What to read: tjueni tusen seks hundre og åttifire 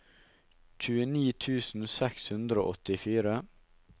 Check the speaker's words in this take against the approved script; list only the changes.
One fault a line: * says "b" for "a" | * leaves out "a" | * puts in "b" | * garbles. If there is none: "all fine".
all fine